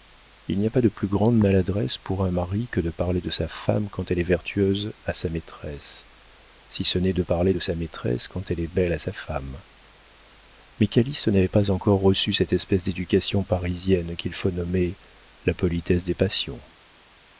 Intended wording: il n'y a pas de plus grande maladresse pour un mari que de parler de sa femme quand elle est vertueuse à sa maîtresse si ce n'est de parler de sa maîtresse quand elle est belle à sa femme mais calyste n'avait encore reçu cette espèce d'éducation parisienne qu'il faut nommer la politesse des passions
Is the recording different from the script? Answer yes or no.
yes